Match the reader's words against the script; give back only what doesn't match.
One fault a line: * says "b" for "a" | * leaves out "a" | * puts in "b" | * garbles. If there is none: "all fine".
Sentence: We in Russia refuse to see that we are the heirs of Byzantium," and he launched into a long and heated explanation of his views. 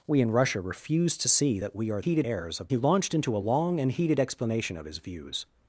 * says "heated" for "the"
* leaves out "Byzantium and"